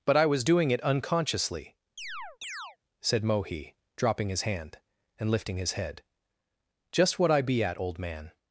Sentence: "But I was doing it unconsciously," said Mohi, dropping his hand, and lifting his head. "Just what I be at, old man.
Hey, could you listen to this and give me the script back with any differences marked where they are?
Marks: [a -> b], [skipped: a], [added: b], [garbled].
"But I was doing it unconsciously," said Mohi, dropping his hand, and lifting his head. "Just what I be at, old man.